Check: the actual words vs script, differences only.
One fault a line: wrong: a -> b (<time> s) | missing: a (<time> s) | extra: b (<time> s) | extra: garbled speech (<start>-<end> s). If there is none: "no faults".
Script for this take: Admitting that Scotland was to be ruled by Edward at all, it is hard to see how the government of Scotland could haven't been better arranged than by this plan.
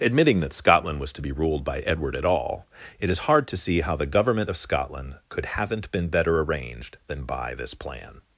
no faults